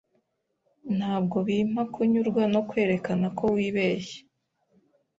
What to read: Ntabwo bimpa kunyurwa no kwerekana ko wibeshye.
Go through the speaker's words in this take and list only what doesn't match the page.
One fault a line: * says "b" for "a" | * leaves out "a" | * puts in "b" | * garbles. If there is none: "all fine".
all fine